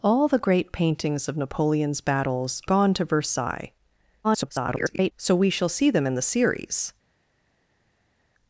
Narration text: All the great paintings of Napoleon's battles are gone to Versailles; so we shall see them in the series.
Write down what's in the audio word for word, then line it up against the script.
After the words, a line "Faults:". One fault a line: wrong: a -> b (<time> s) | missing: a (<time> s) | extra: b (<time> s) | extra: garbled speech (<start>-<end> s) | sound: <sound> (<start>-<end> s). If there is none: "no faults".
All the great paintings of Napoleon's battles gone to Versailles; [garbled] so we shall see them in the series.
Faults:
missing: are (2.6 s)
extra: garbled speech (4.2-5.1 s)